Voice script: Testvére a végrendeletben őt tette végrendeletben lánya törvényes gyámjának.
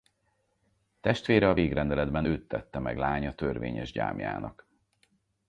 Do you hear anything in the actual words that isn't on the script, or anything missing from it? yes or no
yes